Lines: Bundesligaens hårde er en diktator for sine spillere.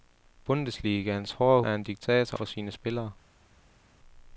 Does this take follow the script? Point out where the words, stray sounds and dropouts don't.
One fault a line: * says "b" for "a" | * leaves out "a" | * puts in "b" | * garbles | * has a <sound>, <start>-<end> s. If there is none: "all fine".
all fine